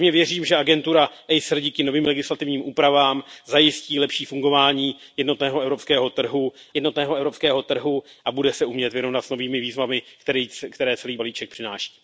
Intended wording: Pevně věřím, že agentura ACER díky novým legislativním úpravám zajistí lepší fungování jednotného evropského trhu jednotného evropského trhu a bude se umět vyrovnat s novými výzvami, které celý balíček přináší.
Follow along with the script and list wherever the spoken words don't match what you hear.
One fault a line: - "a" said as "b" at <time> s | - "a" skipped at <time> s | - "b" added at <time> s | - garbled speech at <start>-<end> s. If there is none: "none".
none